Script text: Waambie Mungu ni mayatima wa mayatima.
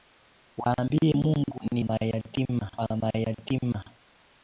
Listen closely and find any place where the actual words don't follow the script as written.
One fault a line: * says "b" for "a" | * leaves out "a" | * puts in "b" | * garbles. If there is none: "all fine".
all fine